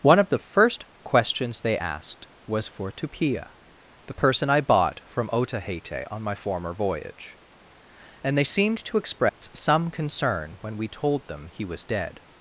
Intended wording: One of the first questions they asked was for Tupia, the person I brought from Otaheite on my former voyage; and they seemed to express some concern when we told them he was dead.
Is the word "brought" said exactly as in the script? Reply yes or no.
no